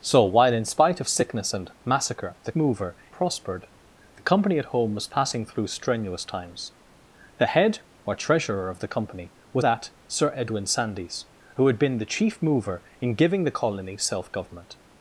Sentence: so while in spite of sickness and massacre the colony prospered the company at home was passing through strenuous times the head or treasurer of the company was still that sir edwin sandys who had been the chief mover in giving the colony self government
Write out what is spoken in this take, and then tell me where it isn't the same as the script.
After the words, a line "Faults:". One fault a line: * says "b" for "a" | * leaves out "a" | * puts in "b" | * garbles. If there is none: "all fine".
so while in spite of sickness and massacre the mover prospered the company at home was passing through strenuous times the head or treasurer of the company was that sir edwin sandys who had been the chief mover in giving the colony self government
Faults:
* says "mover" for "colony"
* leaves out "still"